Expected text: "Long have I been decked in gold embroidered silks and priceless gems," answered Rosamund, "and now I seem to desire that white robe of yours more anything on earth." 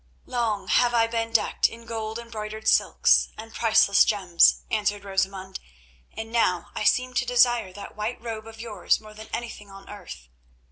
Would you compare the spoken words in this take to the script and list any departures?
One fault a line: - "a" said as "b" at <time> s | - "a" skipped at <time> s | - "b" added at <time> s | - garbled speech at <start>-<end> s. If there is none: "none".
- "than" added at 9.1 s